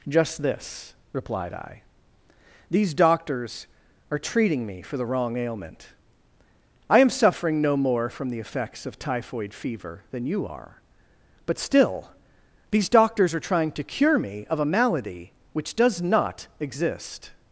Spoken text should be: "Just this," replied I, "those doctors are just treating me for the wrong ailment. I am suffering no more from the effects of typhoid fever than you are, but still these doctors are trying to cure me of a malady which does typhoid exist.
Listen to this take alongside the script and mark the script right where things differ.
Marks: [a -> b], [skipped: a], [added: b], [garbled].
"Just this," replied I, ["those -> these] doctors are [skipped: just] treating me for the wrong ailment. I am suffering no more from the effects of typhoid fever than you are, but still these doctors are trying to cure me of a malady which does [typhoid -> not] exist.